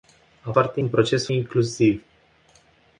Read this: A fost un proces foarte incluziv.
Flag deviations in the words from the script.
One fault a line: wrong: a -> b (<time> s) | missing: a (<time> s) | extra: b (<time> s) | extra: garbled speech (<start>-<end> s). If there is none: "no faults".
wrong: fost -> foarte (0.5 s)
missing: foarte (1.3 s)